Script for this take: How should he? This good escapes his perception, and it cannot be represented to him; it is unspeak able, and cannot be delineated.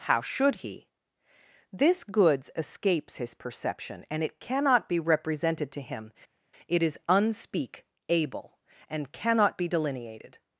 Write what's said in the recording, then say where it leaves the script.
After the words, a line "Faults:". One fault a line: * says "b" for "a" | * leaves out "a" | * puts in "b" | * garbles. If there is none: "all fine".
How should he? This goods escapes his perception, and it cannot be represented to him; it is unspeak able, and cannot be delineated.
Faults:
* says "goods" for "good"